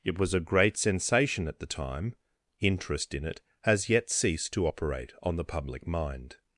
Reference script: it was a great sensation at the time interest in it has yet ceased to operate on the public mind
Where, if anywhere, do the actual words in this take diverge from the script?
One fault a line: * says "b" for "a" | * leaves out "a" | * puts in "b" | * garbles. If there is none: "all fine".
all fine